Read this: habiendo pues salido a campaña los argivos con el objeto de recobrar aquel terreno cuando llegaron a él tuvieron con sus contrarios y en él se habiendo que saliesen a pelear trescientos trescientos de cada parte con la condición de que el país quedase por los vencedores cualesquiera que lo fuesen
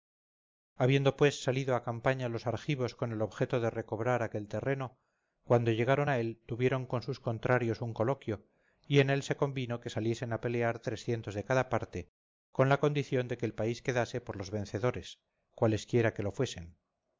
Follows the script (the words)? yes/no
no